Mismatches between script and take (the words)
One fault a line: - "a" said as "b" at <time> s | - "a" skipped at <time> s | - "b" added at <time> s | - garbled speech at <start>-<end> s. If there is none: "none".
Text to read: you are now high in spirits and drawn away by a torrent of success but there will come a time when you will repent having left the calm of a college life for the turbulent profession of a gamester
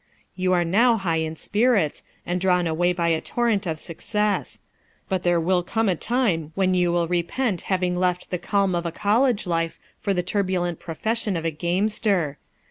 none